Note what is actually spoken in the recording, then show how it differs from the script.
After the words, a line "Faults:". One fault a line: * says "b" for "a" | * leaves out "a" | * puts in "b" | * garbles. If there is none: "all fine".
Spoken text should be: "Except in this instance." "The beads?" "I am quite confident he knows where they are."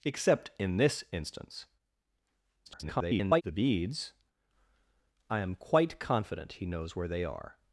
"Except in this instance." [garbled] "The beads?" "I am quite confident he knows where they are."
Faults:
* garbles